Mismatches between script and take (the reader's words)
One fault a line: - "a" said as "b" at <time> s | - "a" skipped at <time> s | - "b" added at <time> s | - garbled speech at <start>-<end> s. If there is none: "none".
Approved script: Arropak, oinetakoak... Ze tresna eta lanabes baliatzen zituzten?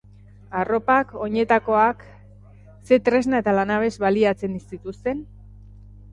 none